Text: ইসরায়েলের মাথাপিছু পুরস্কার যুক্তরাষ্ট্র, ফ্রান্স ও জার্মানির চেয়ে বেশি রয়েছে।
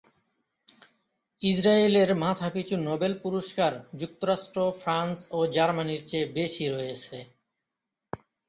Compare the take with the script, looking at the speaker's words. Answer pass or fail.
fail